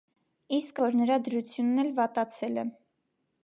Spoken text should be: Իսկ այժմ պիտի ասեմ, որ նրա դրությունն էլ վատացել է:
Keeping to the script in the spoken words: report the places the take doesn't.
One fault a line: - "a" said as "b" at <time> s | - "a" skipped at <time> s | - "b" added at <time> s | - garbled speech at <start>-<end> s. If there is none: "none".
- "այժմ պիտի ասեմ" skipped at 0.8 s